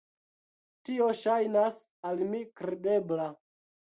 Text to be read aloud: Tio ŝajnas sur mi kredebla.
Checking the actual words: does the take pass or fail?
fail